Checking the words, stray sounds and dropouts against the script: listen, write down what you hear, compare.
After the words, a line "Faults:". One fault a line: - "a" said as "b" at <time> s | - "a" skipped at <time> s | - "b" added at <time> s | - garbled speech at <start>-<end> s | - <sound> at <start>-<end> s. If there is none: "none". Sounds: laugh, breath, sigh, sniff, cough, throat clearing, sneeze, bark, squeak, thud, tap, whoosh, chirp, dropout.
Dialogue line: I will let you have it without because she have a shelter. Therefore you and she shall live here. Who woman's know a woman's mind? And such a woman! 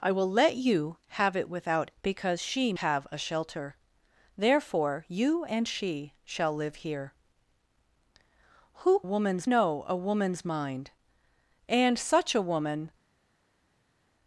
I will let you have it without because she have a shelter. Therefore you and she shall live here. Who woman's know a woman's mind? And such a woman!
Faults:
none